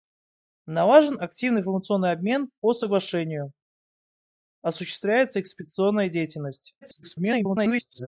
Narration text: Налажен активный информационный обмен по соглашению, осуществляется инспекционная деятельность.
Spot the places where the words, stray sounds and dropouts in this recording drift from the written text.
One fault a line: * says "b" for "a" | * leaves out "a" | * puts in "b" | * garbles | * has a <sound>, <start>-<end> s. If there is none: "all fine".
* garbles